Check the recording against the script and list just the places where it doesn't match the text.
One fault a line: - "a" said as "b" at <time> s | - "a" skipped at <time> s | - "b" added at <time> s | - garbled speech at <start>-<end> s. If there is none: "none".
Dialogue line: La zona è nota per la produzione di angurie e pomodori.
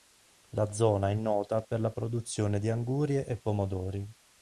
none